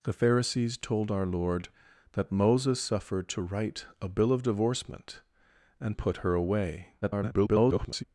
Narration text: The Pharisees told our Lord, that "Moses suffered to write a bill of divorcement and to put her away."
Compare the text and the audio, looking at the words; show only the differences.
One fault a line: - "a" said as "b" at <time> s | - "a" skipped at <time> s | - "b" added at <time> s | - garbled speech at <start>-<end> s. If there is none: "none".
- "to" skipped at 6.0 s
- garbled speech at 7.0-8.0 s